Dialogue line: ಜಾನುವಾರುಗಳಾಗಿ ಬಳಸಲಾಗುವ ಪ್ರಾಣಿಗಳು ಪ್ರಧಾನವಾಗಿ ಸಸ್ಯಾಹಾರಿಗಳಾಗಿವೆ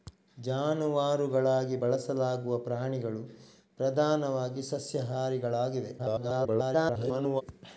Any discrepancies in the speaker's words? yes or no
yes